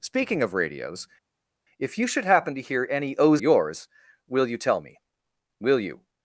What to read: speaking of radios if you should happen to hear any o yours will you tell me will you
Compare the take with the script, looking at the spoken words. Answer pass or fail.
pass